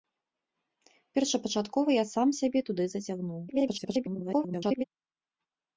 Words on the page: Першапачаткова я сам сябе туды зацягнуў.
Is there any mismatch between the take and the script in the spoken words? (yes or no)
yes